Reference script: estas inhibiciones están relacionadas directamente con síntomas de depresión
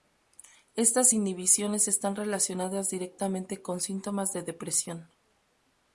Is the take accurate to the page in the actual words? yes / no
yes